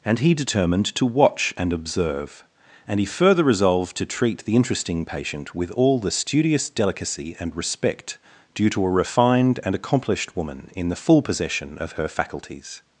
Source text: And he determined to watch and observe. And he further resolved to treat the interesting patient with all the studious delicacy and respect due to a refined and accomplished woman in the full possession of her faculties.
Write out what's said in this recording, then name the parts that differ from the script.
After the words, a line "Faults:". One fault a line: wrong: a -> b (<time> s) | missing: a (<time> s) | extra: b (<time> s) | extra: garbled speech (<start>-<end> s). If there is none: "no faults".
And he determined to watch and observe. And he further resolved to treat the interesting patient with all the studious delicacy and respect due to a refined and accomplished woman in the full possession of her faculties.
Faults:
no faults